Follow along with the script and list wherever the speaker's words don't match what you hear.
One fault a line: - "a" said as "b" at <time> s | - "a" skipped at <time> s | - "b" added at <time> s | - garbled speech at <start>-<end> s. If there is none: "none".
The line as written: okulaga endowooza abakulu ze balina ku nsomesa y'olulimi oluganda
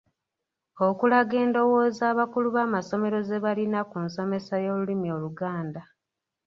- "b'amasomero" added at 2.5 s